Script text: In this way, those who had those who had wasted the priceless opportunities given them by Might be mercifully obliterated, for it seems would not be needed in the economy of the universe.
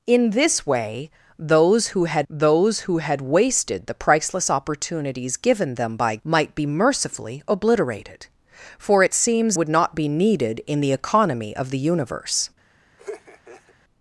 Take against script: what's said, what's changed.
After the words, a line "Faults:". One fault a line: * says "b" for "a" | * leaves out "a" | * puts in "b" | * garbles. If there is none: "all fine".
In this way, those who had those who had wasted the priceless opportunities given them by Might be mercifully obliterated, for it seems would not be needed in the economy of the universe.
Faults:
all fine